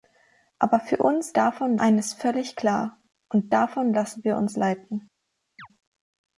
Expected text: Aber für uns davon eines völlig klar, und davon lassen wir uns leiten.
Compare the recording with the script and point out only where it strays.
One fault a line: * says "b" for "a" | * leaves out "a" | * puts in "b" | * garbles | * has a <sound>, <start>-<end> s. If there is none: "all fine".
* has a chirp, 5.6-5.7 s